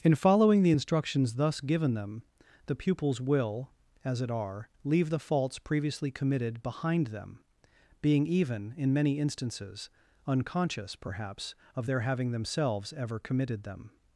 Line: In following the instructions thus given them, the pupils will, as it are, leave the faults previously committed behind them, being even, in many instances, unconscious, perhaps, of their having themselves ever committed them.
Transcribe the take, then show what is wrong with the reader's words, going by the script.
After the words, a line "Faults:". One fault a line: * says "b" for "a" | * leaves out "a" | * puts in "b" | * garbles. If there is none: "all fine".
In following the instructions thus given them, the pupils will, as it are, leave the faults previously committed behind them, being even, in many instances, unconscious, perhaps, of their having themselves ever committed them.
Faults:
all fine